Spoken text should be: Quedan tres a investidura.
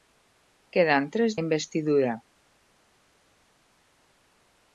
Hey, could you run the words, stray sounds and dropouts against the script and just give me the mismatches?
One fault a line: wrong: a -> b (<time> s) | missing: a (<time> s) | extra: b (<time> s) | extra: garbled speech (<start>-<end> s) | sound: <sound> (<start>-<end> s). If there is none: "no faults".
no faults